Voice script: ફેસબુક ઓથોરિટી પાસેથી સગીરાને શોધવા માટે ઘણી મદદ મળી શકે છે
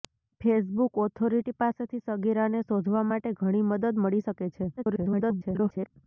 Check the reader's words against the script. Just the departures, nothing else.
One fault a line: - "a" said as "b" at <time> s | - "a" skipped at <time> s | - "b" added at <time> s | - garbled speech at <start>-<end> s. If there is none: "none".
- garbled speech at 4.8-5.9 s